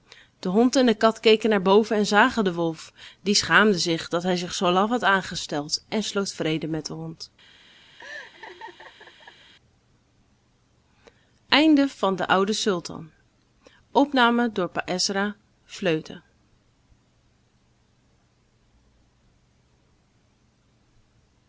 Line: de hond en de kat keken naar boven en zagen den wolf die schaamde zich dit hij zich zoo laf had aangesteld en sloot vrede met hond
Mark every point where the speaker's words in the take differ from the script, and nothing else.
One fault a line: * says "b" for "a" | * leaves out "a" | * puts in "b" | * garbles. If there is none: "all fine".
* says "dat" for "dit"
* puts in "den"